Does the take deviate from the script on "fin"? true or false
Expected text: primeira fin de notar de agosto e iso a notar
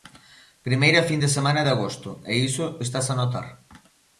false